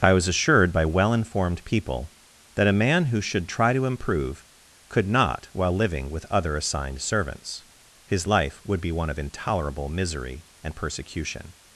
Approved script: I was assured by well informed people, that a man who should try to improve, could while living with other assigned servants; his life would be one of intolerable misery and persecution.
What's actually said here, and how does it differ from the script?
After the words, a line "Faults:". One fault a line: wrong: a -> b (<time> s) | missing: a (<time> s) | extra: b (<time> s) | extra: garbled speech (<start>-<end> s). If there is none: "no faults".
I was assured by well informed people, that a man who should try to improve, could not while living with other assigned servants; his life would be one of intolerable misery and persecution.
Faults:
extra: not (5.1 s)